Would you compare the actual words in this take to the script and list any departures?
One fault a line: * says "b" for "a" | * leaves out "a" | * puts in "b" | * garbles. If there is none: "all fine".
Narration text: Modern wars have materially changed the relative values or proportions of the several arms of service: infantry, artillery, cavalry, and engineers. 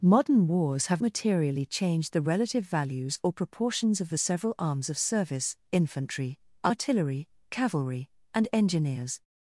all fine